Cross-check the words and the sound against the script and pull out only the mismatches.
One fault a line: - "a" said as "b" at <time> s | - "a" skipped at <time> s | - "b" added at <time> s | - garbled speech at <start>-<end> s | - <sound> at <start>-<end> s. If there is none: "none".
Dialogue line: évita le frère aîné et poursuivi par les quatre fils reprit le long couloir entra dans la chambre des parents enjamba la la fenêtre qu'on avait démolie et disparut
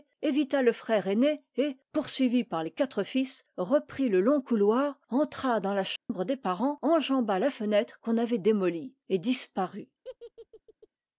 - dropout at 6.0-6.1 s
- "la" skipped at 7.5 s
- laugh at 10.0-10.9 s